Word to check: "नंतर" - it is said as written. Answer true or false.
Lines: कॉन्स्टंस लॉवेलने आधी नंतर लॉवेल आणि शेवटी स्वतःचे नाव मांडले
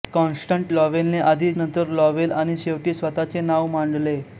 true